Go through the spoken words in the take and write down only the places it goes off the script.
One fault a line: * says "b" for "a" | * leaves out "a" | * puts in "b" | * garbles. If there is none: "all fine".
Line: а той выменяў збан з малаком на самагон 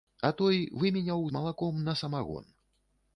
* leaves out "збан"